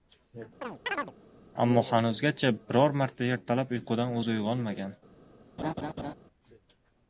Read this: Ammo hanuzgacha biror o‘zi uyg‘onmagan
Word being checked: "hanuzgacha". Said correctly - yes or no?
yes